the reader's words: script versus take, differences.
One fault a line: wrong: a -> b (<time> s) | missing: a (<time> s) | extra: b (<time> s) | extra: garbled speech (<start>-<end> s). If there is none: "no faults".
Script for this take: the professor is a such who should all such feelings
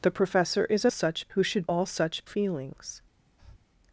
no faults